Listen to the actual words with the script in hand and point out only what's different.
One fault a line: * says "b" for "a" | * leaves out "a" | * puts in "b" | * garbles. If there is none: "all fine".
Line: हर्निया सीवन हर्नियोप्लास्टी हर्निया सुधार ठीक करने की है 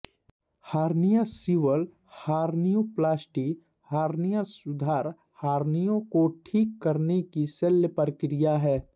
* puts in "हर्निया को"
* puts in "शल्य प्रक्रिया"